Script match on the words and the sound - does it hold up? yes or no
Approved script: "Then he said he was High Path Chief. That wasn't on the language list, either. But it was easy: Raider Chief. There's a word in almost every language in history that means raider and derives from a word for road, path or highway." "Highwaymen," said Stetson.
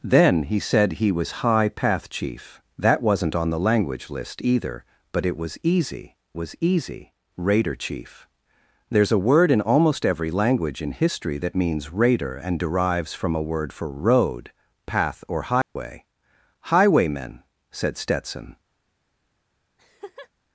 no